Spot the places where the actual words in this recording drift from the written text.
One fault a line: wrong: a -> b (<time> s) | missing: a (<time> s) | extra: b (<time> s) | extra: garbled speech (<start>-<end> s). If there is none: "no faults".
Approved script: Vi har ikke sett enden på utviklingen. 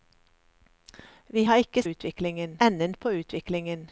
wrong: sett -> utviklingen (1.8 s)